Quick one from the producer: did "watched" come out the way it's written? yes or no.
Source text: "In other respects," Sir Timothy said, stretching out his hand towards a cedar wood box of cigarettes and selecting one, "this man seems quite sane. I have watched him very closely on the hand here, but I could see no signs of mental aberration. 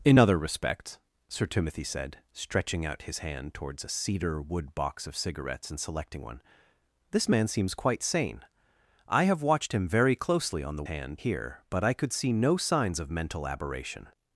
yes